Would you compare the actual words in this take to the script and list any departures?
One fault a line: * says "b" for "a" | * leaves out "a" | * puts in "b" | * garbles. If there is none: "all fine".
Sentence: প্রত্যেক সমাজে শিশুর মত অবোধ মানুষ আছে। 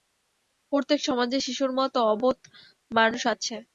all fine